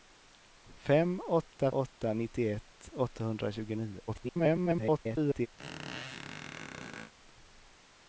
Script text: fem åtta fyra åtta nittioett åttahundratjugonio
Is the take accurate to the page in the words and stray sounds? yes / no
no